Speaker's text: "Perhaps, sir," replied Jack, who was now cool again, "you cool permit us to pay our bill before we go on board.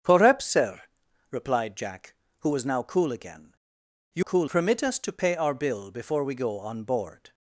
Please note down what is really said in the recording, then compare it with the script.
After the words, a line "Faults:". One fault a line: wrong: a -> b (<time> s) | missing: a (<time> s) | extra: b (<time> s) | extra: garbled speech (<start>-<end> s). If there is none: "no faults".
"Perhaps, sir," replied Jack, who was now cool again, "you cool permit us to pay our bill before we go on board.
Faults:
no faults